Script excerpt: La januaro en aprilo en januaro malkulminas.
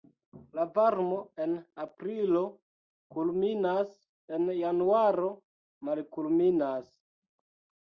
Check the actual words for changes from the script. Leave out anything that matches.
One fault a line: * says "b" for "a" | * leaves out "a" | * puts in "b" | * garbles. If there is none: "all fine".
* says "varmo" for "januaro"
* puts in "kulminas"